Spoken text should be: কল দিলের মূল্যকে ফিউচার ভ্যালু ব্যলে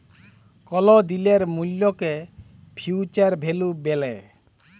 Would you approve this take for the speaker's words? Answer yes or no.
yes